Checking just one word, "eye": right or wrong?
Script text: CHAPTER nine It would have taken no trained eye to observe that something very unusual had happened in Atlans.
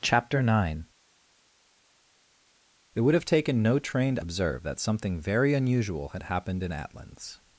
wrong